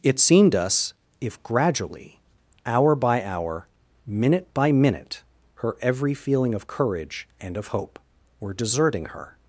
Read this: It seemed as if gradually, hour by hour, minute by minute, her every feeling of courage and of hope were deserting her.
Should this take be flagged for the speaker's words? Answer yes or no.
yes